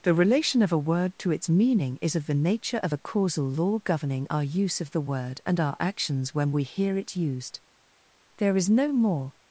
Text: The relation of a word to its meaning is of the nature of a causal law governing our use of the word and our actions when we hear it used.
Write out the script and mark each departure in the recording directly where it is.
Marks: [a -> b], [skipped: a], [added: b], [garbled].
The relation of a word to its meaning is of the nature of a causal law governing our use of the word and our actions when we hear it used. [added: There is no more]